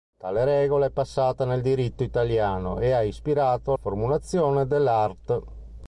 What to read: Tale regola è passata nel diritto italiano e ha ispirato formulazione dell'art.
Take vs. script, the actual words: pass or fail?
pass